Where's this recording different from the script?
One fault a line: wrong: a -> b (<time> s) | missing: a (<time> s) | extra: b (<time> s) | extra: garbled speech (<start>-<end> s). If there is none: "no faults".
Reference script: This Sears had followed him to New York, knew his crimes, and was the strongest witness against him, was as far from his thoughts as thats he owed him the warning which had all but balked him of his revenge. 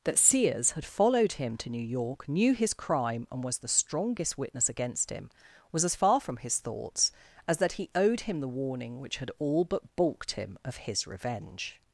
wrong: This -> That (0.0 s)
wrong: crimes -> crime (2.7 s)
wrong: thats -> that (7.6 s)